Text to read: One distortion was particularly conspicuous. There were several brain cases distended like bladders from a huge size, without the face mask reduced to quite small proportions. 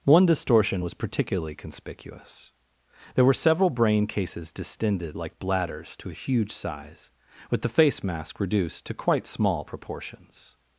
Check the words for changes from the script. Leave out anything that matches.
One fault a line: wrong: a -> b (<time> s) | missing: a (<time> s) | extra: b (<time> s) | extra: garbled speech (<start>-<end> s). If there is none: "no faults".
wrong: from -> to (6.0 s)
wrong: without -> with (7.5 s)